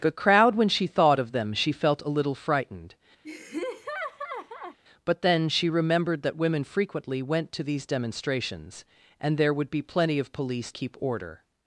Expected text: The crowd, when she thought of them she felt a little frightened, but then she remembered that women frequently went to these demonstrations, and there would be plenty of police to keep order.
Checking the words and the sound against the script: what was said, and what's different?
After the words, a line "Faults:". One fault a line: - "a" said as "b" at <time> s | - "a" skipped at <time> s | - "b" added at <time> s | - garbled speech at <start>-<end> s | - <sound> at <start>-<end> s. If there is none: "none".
The crowd, when she thought of them she felt a little frightened, but then she remembered that women frequently went to these demonstrations, and there would be plenty of police keep order.
Faults:
- laugh at 3.2-4.8 s
- "to" skipped at 10.7 s